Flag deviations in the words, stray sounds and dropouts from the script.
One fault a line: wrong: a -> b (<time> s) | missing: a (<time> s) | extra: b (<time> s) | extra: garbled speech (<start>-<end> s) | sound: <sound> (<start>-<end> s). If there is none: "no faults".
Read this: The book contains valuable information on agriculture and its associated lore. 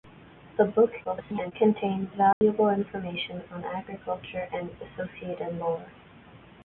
extra: garbled speech (1.0-1.5 s)
sound: dropout (2.3-2.4 s)
missing: its (4.7 s)